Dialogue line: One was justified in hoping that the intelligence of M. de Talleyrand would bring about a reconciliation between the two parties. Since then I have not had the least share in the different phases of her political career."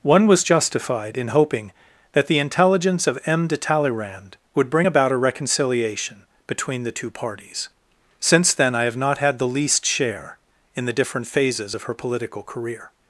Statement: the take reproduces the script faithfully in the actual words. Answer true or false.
true